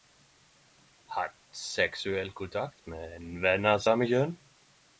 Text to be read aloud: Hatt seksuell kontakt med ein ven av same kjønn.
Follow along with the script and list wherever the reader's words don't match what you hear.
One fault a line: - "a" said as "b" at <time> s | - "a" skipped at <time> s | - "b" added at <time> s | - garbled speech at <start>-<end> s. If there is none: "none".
none